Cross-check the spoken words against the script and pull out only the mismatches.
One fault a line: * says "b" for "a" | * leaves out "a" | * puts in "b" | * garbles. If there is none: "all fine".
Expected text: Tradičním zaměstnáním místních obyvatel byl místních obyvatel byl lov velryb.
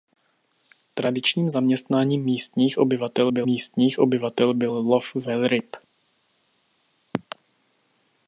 all fine